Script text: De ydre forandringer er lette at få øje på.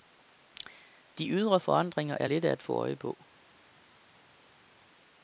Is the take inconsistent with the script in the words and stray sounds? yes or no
no